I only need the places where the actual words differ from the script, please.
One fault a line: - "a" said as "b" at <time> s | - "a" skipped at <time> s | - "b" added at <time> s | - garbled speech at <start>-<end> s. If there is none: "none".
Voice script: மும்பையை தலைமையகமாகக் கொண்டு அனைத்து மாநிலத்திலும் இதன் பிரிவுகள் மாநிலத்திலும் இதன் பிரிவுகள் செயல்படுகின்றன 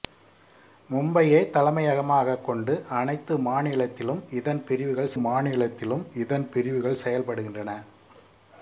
none